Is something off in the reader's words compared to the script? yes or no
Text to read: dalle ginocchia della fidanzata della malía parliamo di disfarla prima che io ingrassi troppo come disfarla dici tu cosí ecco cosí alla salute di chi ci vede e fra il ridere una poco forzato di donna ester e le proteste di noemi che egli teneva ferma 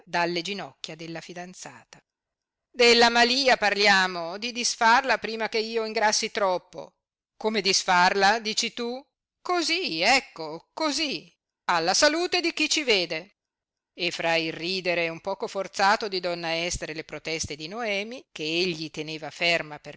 yes